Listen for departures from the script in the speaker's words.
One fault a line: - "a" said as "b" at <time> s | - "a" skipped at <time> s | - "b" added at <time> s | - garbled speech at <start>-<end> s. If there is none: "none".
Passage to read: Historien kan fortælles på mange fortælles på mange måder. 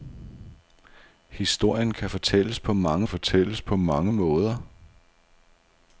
none